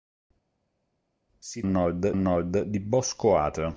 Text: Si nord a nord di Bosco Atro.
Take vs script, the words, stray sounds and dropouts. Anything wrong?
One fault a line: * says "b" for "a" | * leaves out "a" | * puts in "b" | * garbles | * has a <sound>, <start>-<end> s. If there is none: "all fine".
all fine